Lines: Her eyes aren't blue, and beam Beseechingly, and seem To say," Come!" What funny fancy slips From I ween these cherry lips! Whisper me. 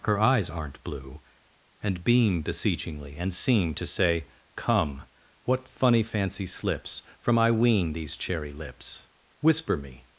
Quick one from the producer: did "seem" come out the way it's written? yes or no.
yes